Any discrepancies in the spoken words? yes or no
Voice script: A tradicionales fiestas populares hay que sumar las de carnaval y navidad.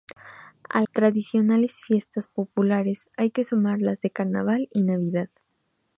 no